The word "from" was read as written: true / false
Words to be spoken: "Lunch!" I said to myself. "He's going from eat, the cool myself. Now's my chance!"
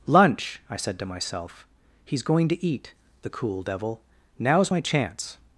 false